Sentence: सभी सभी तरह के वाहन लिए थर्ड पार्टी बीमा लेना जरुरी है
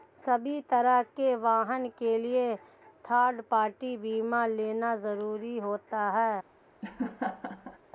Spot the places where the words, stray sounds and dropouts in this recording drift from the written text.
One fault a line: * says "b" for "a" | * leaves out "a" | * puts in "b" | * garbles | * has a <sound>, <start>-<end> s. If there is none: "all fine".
* leaves out "सभी"
* puts in "के"
* puts in "होता"
* has a laugh, 6.8-7.8 s